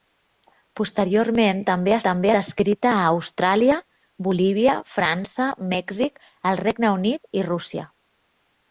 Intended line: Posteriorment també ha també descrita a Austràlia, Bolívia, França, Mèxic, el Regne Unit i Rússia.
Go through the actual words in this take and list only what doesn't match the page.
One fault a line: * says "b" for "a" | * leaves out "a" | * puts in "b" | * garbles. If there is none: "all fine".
all fine